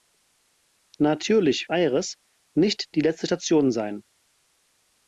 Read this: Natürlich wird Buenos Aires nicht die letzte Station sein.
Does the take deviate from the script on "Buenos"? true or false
true